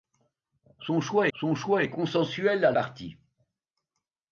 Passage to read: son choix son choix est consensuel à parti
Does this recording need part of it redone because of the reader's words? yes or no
no